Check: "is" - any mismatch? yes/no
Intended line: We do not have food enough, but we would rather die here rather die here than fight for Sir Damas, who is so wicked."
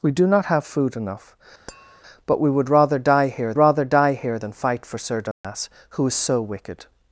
no